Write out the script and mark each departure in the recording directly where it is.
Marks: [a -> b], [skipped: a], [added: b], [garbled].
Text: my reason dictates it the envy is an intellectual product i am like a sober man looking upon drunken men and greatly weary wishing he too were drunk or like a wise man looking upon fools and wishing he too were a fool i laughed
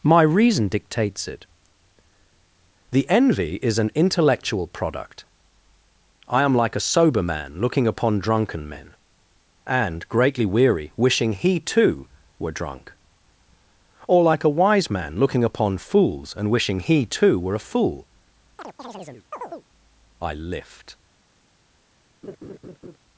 my reason dictates it the envy is an intellectual product i am like a sober man looking upon drunken men and greatly weary wishing he too were drunk or like a wise man looking upon fools and wishing he too were a fool i [laughed -> lift]